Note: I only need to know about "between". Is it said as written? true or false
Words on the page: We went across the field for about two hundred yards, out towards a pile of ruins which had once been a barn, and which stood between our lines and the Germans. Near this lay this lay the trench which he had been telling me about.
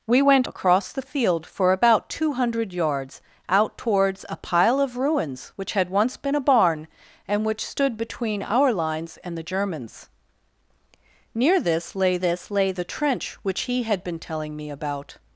true